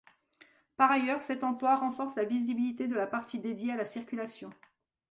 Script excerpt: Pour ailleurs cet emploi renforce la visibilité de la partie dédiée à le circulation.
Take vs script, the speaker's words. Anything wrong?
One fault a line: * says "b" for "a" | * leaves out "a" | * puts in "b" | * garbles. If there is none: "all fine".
* says "Par" for "Pour"
* says "la" for "le"